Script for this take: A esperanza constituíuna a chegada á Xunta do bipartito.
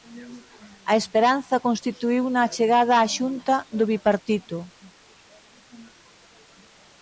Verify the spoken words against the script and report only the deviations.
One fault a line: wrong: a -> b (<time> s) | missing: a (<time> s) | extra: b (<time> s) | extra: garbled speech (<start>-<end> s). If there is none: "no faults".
no faults